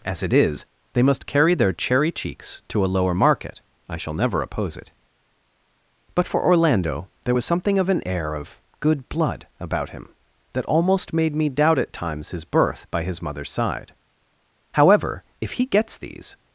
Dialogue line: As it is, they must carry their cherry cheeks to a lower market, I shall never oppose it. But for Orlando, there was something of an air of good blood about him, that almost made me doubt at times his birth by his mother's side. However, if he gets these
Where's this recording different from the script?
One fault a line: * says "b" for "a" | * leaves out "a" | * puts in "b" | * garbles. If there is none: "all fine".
all fine